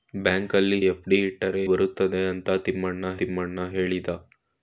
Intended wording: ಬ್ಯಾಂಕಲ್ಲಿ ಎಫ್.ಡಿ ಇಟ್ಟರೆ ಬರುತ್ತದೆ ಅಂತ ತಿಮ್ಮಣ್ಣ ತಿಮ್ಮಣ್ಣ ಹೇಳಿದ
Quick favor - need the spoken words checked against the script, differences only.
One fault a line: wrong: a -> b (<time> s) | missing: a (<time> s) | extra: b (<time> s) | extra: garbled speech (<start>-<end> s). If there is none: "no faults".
no faults